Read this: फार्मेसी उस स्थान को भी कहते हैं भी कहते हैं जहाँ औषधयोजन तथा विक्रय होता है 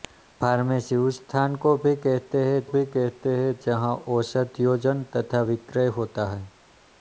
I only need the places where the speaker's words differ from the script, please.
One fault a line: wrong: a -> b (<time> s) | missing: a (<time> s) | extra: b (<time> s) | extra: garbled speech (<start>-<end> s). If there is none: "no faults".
no faults